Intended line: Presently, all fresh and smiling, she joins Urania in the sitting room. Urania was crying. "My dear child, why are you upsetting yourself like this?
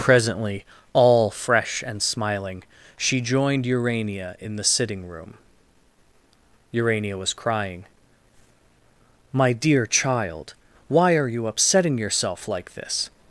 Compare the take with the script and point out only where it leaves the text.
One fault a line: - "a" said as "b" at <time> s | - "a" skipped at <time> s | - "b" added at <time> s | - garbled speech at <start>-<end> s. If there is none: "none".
- "joins" said as "joined" at 3.2 s